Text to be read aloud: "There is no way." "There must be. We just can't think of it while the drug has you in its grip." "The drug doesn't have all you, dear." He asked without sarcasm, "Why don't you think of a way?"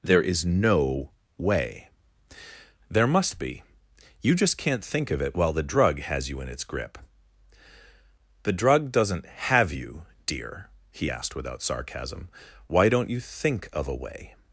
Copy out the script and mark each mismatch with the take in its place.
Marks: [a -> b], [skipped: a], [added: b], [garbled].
"There is no way." "There must be. [We -> You] just can't think of it while the drug has you in its grip." "The drug doesn't have [skipped: all] you, dear." He asked without sarcasm, "Why don't you think of a way?"